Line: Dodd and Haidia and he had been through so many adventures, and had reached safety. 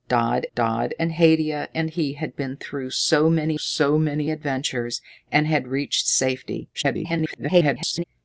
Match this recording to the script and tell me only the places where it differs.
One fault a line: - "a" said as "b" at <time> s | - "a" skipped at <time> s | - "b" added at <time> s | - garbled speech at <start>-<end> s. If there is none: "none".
- "dodd" added at 0.6 s
- "so many" added at 3.6 s
- garbled speech at 6.7-8.0 s